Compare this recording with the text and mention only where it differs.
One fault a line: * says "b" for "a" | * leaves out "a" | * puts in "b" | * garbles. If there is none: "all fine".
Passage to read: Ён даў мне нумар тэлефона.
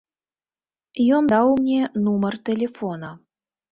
all fine